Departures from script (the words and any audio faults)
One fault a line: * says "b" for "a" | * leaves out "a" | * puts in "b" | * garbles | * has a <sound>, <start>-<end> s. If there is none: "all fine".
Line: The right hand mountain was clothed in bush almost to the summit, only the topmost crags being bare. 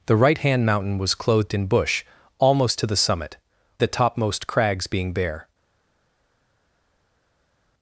* leaves out "only"